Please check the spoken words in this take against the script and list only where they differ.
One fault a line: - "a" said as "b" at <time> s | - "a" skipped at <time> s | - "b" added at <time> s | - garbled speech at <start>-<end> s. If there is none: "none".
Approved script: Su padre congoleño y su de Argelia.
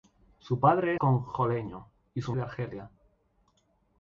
none